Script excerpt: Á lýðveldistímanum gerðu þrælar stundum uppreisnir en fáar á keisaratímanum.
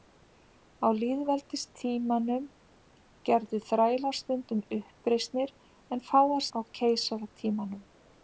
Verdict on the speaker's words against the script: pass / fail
pass